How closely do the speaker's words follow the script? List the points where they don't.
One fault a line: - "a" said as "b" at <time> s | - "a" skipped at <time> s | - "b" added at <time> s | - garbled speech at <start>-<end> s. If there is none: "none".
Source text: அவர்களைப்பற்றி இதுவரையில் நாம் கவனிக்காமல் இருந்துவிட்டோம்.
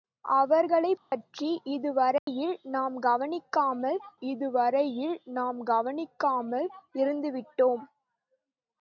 - "இதுவரையில் நாம் கவனிக்காமல்" added at 4.2 s